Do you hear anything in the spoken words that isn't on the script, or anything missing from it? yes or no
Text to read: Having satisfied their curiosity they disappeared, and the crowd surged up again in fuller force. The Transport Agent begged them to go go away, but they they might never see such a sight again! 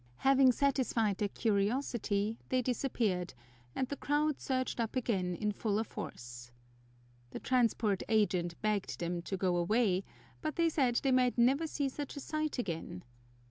yes